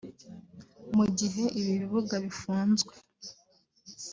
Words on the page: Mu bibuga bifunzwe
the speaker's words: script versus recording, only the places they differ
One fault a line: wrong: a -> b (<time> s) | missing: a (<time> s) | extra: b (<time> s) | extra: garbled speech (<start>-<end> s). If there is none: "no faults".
extra: gihe ibi (1.2 s)